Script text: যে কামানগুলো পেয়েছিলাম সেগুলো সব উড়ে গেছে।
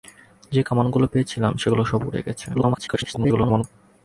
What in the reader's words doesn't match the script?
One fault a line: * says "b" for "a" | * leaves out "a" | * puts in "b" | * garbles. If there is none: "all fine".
* garbles